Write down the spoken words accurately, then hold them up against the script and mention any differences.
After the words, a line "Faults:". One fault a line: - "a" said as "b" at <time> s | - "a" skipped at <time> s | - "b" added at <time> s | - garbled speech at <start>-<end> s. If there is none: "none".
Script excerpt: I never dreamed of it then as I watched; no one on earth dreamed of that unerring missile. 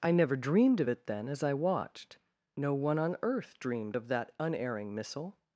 I never dreamed of it then as I watched; no one on earth dreamed of that unerring missile.
Faults:
none